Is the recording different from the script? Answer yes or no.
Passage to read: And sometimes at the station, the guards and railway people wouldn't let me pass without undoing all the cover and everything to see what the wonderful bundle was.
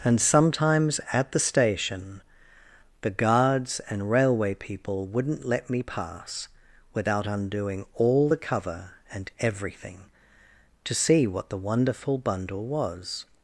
no